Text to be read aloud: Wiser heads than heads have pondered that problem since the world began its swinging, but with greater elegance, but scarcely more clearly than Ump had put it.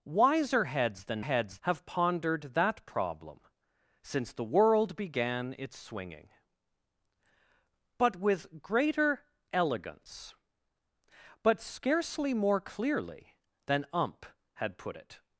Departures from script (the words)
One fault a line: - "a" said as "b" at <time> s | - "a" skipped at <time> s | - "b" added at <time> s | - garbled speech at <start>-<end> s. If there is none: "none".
none